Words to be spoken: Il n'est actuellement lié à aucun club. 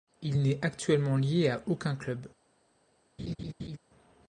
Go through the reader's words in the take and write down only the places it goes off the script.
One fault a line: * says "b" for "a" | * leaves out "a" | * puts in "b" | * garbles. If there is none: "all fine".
all fine